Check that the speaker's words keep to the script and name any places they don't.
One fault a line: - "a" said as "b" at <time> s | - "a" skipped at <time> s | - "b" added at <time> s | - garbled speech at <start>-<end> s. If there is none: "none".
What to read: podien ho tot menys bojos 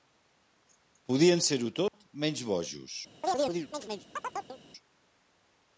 - "ser" added at 1.5 s